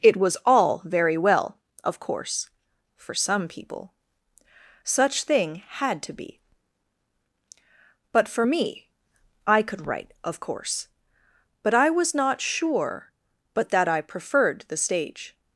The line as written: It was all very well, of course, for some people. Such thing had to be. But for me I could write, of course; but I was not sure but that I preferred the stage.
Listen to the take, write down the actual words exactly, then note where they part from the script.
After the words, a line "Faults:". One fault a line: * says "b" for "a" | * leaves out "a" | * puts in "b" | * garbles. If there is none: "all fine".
It was all very well, of course, for some people. Such thing had to be. But for me I could write, of course; but I was not sure but that I preferred the stage.
Faults:
all fine